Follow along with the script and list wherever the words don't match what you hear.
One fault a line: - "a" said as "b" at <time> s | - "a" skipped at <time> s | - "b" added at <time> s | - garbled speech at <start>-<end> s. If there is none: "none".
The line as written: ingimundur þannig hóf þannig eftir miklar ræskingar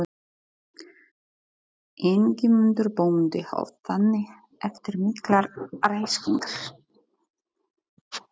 - "þannig" said as "bóndi" at 3.0 s